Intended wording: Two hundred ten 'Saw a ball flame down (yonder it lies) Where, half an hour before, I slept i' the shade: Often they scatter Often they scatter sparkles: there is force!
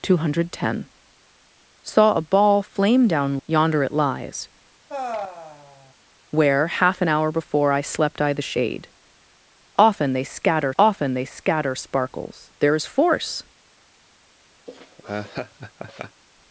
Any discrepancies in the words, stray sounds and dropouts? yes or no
yes